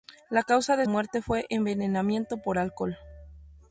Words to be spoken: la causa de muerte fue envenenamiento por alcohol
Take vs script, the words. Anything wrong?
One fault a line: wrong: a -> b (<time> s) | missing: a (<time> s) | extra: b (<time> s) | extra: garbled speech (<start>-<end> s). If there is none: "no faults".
no faults